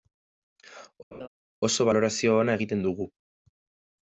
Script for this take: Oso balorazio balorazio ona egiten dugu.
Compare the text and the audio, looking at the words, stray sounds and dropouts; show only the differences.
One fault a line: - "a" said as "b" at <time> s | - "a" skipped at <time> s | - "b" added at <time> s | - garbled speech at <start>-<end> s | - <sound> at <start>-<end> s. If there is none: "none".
- laugh at 1.1-1.3 s
- "balorazio" skipped at 2.4 s